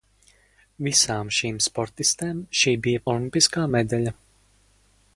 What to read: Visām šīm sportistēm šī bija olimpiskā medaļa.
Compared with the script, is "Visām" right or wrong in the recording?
right